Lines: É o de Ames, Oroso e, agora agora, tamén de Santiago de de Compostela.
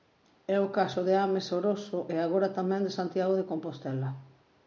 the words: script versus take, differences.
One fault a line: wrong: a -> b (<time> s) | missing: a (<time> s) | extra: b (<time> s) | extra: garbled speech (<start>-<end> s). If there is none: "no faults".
extra: caso (0.8 s)
missing: agora (2.5 s)
missing: de (3.5 s)